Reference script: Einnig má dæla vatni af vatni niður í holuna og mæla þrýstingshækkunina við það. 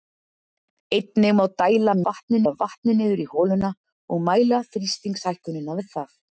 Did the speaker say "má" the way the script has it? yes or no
yes